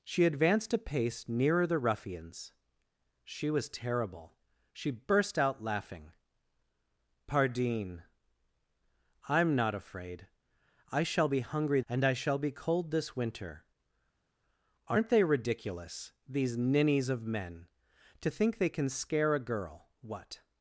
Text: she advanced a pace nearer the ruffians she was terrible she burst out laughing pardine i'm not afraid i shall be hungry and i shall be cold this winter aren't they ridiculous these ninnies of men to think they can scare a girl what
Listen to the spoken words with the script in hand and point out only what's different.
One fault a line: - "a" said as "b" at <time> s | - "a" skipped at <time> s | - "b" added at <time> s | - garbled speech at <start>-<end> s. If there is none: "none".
none